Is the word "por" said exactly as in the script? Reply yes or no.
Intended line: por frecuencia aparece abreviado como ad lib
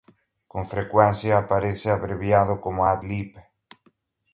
no